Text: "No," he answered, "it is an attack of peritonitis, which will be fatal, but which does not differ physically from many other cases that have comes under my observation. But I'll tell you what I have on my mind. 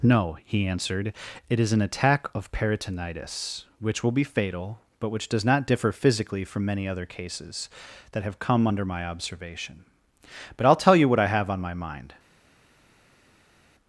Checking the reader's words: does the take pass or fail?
fail